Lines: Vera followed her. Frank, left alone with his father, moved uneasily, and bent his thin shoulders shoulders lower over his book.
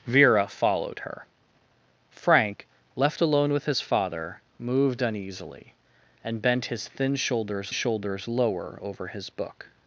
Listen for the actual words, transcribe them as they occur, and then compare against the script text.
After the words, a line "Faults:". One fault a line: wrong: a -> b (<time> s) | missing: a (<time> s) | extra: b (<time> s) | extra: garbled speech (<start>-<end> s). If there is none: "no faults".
Vera followed her. Frank, left alone with his father, moved uneasily, and bent his thin shoulders shoulders lower over his book.
Faults:
no faults